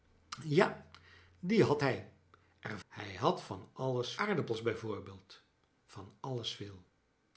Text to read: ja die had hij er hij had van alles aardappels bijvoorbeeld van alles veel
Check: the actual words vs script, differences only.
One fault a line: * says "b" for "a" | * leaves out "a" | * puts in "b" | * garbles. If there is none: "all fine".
all fine